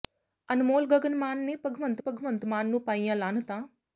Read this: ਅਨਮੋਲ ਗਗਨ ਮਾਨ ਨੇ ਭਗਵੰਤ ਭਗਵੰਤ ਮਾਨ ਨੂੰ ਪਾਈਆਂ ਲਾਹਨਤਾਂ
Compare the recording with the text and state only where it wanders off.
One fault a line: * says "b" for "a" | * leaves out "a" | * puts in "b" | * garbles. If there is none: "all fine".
all fine